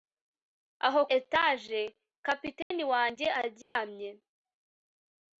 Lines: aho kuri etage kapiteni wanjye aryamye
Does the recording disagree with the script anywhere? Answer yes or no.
yes